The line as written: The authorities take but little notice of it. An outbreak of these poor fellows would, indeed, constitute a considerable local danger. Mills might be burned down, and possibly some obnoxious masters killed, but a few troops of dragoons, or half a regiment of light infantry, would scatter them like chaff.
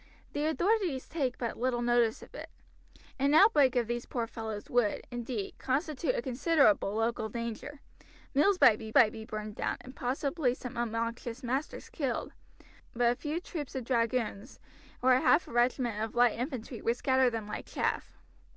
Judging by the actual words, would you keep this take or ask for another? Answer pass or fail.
fail